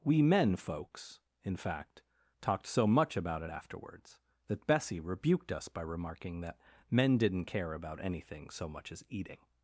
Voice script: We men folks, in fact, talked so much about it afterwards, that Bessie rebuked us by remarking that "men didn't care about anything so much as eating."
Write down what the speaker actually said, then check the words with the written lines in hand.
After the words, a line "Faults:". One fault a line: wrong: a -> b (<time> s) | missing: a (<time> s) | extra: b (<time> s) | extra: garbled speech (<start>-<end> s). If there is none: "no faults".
We men folks, in fact, talked so much about it afterwards, that Bessie rebuked us by remarking that "men didn't care about anything so much as eating."
Faults:
no faults